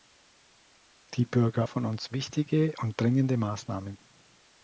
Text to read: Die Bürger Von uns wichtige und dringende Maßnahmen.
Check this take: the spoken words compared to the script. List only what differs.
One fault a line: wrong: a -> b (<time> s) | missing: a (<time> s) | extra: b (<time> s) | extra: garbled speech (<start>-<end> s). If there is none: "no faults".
no faults